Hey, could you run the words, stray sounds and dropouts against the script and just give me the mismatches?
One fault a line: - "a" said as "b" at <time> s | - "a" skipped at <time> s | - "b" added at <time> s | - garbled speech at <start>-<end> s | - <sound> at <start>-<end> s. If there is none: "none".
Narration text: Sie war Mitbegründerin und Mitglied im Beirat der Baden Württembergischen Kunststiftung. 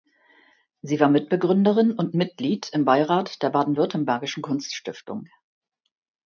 none